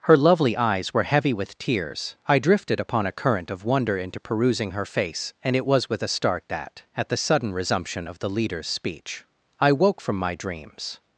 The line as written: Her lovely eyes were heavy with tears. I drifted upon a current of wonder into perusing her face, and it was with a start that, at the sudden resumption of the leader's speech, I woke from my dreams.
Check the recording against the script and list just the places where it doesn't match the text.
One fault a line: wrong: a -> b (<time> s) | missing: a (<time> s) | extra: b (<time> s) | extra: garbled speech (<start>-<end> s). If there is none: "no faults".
no faults